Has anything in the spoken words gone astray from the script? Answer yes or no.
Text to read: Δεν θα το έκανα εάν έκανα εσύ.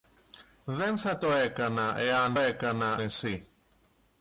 no